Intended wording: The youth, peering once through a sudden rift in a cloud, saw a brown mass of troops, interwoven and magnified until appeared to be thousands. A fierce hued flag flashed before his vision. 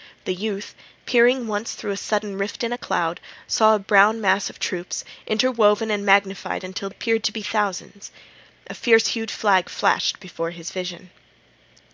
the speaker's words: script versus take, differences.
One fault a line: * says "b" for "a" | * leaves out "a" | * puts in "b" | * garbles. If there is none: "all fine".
all fine